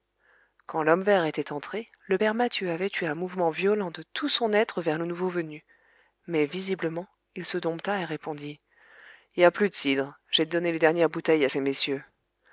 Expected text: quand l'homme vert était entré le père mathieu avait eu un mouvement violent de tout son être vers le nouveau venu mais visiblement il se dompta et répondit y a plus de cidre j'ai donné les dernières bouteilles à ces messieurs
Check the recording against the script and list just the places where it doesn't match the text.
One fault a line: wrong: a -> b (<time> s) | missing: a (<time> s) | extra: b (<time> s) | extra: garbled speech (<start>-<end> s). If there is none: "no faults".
no faults